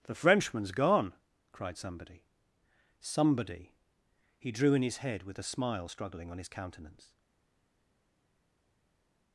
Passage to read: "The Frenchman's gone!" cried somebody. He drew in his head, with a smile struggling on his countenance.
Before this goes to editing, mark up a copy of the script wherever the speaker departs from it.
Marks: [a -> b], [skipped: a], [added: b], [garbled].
"The Frenchman's gone!" cried somebody. [added: somebody] He drew in his head, with a smile struggling on his countenance.